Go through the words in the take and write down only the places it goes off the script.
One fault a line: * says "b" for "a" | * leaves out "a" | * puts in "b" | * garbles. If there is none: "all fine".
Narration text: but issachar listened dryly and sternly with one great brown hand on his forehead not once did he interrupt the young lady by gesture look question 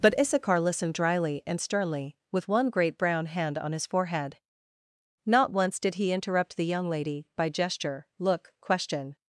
all fine